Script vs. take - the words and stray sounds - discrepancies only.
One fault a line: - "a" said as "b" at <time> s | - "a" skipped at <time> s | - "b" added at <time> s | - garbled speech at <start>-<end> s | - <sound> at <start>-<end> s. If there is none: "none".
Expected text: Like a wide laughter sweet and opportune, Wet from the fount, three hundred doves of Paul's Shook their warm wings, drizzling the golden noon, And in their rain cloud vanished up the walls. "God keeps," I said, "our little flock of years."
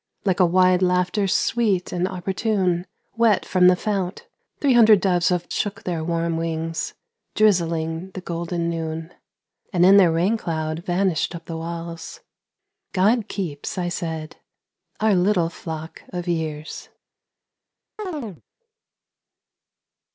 - "Paul's" skipped at 5.5 s
- chirp at 18.0-18.4 s